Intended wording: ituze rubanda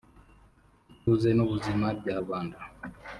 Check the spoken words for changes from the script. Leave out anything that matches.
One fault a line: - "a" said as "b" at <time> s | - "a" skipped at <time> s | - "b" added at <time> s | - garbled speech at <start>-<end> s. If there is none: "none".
- "n'ubuzima bya" added at 1.3 s